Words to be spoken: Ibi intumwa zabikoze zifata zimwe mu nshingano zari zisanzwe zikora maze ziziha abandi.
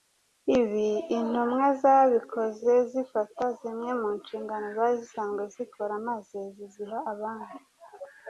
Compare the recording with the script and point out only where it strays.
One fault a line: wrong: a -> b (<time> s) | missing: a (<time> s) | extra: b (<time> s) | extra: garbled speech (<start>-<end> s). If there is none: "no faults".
no faults